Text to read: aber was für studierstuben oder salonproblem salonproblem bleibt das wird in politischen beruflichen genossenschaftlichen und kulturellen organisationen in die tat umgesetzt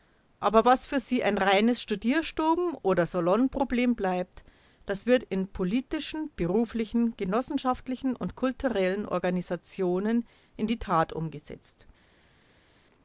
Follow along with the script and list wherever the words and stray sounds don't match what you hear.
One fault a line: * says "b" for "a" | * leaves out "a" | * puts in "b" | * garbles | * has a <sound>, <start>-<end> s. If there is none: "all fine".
* puts in "sie ein reines"
* leaves out "salonproblem"